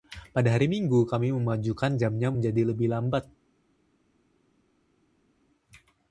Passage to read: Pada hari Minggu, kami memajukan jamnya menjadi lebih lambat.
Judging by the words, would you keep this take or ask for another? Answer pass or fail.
pass